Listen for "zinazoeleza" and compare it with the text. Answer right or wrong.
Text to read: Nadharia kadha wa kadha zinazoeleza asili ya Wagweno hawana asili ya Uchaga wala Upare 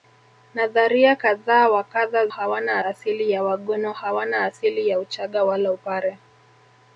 wrong